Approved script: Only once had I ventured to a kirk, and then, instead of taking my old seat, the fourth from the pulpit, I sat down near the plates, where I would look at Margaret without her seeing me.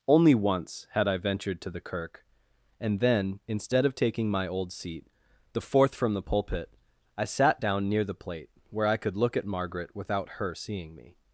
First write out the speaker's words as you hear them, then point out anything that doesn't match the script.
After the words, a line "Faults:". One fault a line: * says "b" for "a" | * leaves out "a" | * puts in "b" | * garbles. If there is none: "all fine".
Only once had I ventured to the kirk, and then, instead of taking my old seat, the fourth from the pulpit, I sat down near the plate, where I could look at Margaret without her seeing me.
Faults:
* says "the" for "a"
* says "plate" for "plates"
* says "could" for "would"